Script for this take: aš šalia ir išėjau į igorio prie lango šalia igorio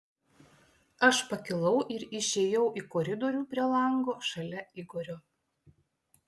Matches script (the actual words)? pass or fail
fail